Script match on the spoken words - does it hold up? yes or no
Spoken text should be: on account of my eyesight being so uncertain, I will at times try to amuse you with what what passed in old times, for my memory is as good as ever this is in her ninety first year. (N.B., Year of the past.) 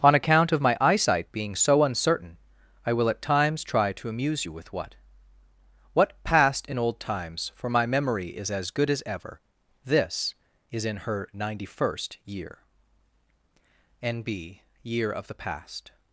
yes